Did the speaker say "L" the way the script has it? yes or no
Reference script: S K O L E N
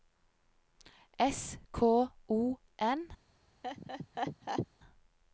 no